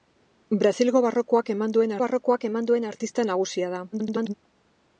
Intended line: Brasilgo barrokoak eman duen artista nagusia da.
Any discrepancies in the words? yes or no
yes